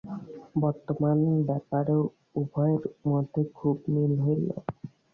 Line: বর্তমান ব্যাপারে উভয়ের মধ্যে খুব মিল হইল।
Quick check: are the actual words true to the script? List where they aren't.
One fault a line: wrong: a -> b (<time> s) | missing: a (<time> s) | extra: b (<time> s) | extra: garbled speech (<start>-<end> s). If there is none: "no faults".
no faults